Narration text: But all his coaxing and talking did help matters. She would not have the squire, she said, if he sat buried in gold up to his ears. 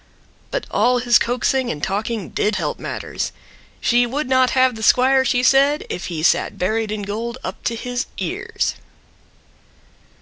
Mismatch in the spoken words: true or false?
false